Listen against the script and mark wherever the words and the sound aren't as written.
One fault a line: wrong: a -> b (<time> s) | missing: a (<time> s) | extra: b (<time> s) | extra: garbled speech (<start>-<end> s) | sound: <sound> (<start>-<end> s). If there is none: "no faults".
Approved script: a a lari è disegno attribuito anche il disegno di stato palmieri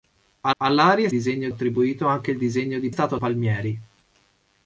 no faults